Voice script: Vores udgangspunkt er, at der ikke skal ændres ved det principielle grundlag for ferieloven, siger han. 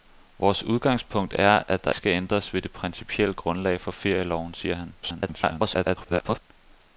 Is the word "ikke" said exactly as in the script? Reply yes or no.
no